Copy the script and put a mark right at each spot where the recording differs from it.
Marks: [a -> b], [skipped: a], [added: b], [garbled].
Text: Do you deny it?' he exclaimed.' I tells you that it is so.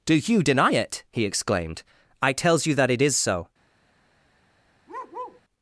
Do you deny it?' he exclaimed.' I tells you that it is so.